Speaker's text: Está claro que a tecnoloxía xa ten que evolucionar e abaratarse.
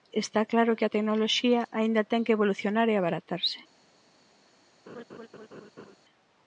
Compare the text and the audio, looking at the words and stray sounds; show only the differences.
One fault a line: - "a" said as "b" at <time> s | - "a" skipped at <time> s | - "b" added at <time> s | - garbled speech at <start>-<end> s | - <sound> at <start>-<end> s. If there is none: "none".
- "xa" said as "aínda" at 1.8 s
- laugh at 4.9-6.0 s